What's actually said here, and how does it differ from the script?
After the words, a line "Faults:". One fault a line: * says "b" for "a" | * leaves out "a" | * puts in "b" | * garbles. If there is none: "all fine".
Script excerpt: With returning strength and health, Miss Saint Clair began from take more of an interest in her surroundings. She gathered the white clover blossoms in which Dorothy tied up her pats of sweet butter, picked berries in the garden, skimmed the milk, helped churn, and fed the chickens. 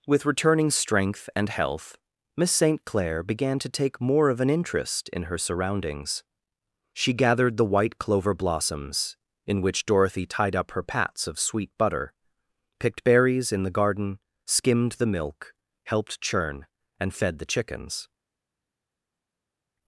With returning strength and health, Miss Saint Clair began to take more of an interest in her surroundings. She gathered the white clover blossoms in which Dorothy tied up her pats of sweet butter, picked berries in the garden, skimmed the milk, helped churn, and fed the chickens.
Faults:
* says "to" for "from"